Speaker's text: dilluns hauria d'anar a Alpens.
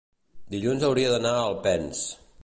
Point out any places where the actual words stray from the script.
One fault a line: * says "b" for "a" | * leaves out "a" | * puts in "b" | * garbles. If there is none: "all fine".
all fine